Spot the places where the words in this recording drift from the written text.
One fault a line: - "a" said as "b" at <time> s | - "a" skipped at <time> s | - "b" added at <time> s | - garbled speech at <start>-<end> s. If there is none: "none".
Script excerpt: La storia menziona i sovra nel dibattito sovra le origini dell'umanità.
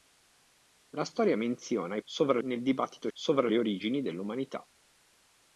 none